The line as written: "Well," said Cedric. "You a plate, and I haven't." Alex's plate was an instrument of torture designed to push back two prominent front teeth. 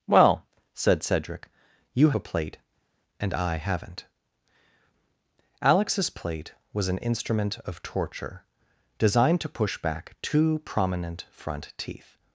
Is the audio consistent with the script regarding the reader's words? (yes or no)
yes